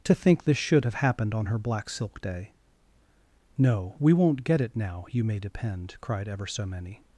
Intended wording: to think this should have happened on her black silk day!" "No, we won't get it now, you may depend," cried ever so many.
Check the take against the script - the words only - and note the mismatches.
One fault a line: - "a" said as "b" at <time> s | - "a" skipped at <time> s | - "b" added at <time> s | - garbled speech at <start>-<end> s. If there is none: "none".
none